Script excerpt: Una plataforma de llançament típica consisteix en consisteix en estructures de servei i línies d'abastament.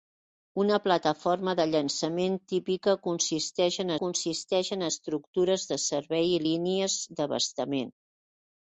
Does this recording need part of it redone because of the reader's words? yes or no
no